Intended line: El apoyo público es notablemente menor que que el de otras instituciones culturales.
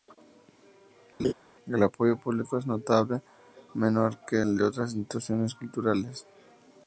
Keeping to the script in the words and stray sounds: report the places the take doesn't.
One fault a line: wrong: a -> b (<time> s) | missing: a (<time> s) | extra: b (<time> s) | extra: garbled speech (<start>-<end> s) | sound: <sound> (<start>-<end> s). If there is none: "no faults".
sound: laugh (1.2-1.3 s)
missing: que (4.4 s)